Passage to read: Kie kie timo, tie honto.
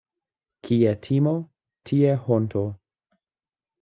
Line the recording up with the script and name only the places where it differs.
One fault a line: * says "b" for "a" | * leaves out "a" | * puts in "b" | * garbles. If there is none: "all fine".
* leaves out "kie"